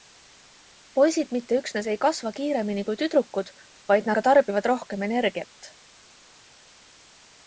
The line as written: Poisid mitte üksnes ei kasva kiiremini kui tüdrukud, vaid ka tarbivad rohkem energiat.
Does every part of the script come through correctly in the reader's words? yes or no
yes